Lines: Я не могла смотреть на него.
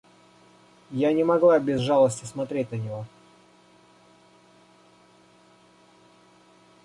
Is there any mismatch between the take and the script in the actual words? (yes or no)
yes